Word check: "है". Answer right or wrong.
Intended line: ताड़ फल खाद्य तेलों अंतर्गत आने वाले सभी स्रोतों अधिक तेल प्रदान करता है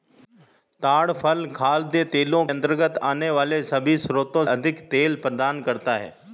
right